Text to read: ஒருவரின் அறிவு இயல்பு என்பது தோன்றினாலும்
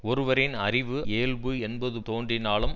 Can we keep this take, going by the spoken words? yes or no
yes